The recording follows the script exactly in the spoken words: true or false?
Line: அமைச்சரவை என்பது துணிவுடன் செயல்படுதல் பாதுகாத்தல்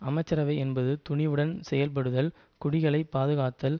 false